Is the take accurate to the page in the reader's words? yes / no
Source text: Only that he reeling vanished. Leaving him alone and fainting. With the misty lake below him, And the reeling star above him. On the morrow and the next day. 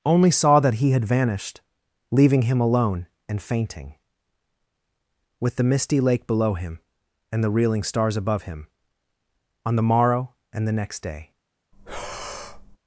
no